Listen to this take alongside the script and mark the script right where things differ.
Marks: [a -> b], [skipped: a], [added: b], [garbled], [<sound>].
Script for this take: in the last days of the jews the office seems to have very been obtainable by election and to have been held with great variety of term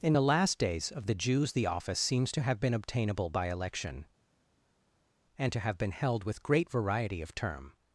in the last days of the jews the office seems to have [skipped: very] been obtainable by election and to have been held with great variety of term